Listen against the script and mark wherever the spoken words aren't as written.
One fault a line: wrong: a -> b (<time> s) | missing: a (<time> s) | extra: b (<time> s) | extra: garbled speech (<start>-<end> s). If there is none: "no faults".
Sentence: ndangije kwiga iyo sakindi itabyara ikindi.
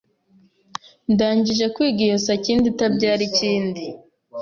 no faults